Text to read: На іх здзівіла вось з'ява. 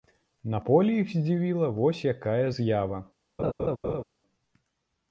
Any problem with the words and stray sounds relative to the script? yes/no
yes